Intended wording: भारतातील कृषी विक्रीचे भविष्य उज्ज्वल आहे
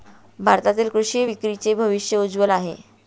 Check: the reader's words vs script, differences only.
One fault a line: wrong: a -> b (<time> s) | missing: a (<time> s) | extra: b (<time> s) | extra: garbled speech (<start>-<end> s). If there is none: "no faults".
no faults